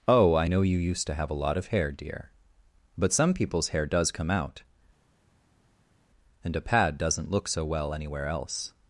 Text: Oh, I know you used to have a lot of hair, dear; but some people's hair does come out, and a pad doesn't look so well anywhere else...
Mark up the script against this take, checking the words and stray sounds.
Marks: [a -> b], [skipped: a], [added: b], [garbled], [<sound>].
Oh, I know you used to have a lot of hair, dear; but some people's hair does come out, and a pad doesn't look so well anywhere else...